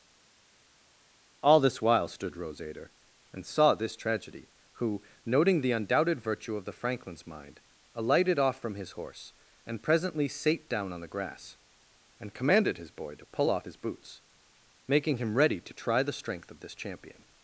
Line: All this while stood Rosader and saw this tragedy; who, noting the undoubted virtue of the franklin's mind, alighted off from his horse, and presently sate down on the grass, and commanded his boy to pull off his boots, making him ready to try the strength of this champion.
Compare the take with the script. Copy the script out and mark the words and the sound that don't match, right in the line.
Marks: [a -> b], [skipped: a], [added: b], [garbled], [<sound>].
All this while stood Rosader and saw this tragedy; who, noting the undoubted virtue of the franklin's mind, alighted off from his horse, and presently sate down on the grass, and commanded his boy to pull off his boots, making him ready to try the strength of this champion.